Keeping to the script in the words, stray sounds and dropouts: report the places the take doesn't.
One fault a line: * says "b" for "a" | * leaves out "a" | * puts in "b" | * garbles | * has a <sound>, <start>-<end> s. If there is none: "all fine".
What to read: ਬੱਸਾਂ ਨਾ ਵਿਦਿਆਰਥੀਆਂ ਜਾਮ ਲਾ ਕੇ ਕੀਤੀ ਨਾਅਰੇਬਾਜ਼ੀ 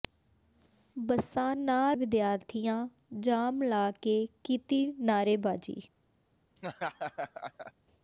* has a laugh, 6.6-7.7 s